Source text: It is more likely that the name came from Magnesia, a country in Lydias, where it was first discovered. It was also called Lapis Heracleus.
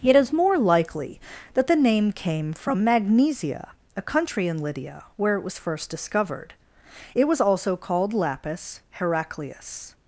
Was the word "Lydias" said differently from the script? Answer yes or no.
yes